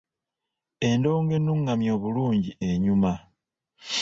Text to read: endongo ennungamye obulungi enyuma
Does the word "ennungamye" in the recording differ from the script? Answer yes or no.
no